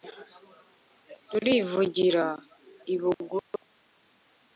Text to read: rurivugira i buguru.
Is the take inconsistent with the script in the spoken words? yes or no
no